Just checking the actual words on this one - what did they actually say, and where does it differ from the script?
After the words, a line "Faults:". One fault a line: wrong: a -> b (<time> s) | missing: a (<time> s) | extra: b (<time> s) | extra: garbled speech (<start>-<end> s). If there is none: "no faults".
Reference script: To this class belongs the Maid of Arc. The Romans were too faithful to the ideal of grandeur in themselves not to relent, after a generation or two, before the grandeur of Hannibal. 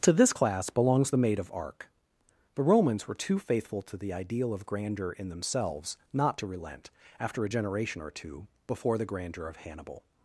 To this class belongs the Maid of Arc. The Romans were too faithful to the ideal of grandeur in themselves not to relent, after a generation or two, before the grandeur of Hannibal.
Faults:
no faults